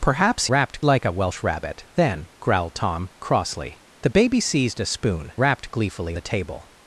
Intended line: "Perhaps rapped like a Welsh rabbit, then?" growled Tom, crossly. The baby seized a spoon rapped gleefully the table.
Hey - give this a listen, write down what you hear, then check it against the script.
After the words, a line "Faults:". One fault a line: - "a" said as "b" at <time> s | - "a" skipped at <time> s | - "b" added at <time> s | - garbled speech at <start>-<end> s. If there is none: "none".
"Perhaps rapped like a Welsh rabbit, then?" growled Tom, crossly. The baby seized a spoon rapped gleefully the table.
Faults:
none